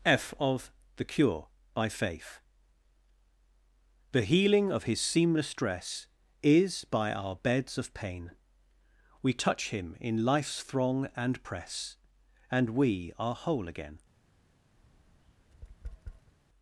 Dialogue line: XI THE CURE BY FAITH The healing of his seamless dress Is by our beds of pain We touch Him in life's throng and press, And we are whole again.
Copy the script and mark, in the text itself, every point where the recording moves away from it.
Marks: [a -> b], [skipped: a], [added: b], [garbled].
[XI -> F of] THE CURE BY FAITH The healing of his seamless dress Is by our beds of pain We touch Him in life's throng and press, And we are whole again.